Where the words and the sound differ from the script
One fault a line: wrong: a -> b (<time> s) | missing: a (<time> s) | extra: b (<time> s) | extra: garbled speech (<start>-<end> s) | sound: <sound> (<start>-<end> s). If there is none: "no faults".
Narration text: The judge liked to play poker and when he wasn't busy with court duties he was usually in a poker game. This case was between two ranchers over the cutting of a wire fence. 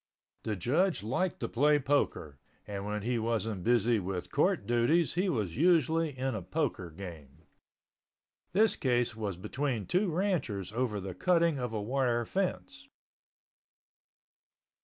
no faults